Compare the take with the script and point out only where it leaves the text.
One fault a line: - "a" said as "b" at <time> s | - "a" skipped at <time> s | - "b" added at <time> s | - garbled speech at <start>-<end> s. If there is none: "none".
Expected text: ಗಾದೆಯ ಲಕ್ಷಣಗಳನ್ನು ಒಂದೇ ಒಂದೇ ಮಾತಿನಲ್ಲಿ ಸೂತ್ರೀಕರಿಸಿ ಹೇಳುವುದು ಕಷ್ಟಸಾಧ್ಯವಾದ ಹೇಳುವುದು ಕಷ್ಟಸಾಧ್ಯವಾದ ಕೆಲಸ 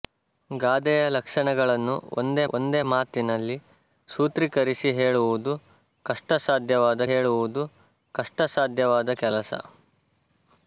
none